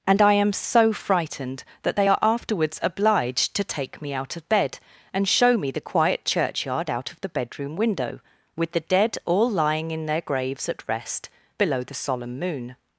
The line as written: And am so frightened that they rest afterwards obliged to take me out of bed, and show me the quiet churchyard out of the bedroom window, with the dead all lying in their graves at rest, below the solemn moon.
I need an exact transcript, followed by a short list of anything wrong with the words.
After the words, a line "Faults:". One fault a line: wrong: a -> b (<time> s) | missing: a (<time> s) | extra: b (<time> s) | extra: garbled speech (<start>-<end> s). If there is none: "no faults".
And I am so frightened that they are afterwards obliged to take me out of bed, and show me the quiet churchyard out of the bedroom window, with the dead all lying in their graves at rest, below the solemn moon.
Faults:
extra: I (0.2 s)
wrong: rest -> are (2.1 s)